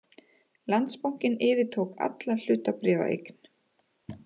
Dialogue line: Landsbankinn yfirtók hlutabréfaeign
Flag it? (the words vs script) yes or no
yes